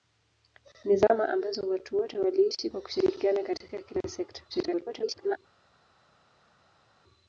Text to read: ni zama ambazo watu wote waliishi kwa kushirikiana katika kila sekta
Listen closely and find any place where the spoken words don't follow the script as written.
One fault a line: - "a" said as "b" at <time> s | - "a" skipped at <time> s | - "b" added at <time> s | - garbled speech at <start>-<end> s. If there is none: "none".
- garbled speech at 4.5-5.4 s